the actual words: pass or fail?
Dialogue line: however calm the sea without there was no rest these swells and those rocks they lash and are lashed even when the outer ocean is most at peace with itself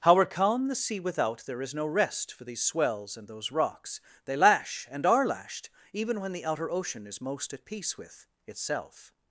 fail